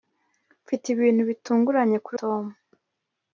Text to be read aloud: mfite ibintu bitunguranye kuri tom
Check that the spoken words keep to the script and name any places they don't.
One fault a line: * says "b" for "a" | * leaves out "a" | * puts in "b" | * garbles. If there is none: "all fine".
all fine